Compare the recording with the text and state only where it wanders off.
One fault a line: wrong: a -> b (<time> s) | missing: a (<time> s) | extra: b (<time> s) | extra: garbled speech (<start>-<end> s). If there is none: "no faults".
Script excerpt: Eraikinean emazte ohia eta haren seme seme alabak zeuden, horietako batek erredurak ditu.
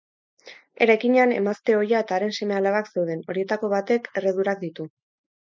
missing: seme (2.6 s)